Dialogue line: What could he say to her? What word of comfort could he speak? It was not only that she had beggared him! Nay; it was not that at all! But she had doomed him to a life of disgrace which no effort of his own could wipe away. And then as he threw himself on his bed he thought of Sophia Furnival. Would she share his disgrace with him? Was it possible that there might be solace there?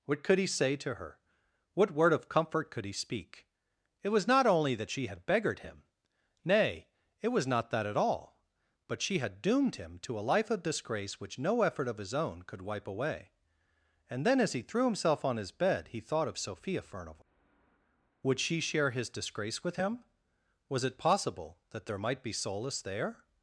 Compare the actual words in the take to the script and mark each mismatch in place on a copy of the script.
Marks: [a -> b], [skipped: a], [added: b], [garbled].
What could he say to her? What word of comfort could he speak? It was not only that she had beggared him! Nay; it was not that at all! But she had doomed him to a life of disgrace which no effort of his own could wipe away. And then as he threw himself on his bed he thought of Sophia Furnival. Would she share his disgrace with him? Was it possible that there might be solace there?